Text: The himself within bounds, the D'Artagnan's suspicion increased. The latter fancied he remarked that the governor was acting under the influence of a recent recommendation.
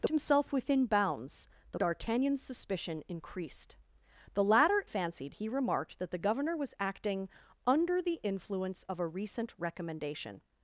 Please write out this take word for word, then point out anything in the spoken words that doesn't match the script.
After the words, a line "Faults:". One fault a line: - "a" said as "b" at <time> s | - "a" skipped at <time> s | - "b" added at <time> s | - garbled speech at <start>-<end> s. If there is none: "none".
The himself within bounds, the D'Artagnan's suspicion increased. The latter fancied he remarked that the governor was acting under the influence of a recent recommendation.
Faults:
none